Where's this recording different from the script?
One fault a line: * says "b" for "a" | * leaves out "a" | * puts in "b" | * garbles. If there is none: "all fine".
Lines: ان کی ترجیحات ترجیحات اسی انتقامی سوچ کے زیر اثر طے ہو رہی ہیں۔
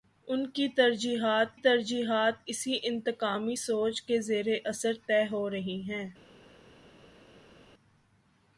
all fine